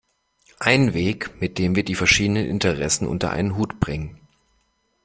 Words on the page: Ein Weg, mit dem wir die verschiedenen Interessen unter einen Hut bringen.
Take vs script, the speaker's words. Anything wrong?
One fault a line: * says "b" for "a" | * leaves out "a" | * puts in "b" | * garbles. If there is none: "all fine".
all fine